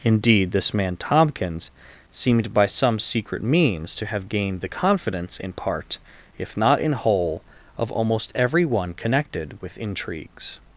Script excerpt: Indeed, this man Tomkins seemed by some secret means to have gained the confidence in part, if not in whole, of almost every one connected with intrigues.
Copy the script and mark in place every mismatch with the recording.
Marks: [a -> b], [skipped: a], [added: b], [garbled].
Indeed, this man Tomkins seemed by some secret means to have gained the confidence in part, if not in whole, of almost every one connected with intrigues.